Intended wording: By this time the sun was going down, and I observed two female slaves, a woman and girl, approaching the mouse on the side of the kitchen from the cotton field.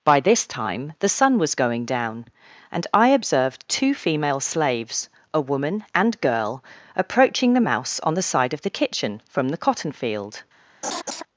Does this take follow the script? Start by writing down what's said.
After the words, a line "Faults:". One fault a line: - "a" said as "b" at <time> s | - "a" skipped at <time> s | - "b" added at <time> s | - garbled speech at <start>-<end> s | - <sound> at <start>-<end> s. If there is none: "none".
By this time the sun was going down, and I observed two female slaves, a woman and girl, approaching the mouse on the side of the kitchen from the cotton field.
Faults:
- laugh at 10.8-11.2 s